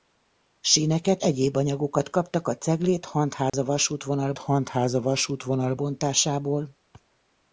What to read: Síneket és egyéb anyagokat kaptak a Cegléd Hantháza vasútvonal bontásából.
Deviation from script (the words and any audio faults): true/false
true